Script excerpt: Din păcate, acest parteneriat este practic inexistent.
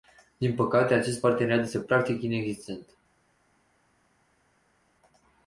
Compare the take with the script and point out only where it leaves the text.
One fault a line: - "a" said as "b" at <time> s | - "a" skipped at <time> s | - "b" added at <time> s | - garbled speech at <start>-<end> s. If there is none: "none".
none